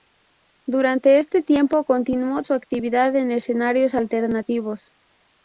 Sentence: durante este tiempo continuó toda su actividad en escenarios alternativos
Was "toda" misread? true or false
true